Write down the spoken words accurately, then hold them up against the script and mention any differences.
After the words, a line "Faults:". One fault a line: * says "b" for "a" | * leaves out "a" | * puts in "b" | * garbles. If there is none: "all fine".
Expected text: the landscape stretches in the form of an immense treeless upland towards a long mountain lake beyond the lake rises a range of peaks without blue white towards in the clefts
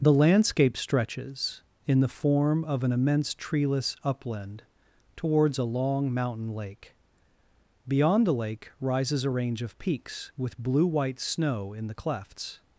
the landscape stretches in the form of an immense treeless upland towards a long mountain lake beyond the lake rises a range of peaks with blue white snow in the clefts
Faults:
* says "with" for "without"
* says "snow" for "towards"